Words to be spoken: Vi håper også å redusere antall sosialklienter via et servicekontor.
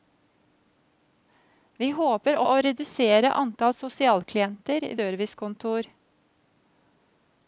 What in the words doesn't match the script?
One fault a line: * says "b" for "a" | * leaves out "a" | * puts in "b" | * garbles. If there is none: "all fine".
* leaves out "også"
* leaves out "via et"